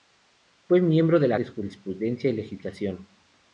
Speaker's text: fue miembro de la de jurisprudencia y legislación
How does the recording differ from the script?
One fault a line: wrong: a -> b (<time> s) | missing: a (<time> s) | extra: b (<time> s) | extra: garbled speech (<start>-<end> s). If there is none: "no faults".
no faults